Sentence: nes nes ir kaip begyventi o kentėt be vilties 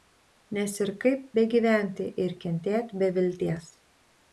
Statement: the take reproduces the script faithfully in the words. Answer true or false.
false